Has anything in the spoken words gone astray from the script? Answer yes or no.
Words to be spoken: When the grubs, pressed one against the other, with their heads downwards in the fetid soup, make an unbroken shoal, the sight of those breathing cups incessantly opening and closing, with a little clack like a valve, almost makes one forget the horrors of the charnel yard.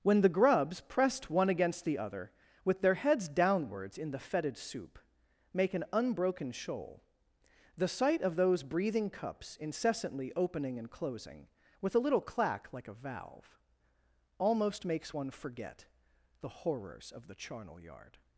no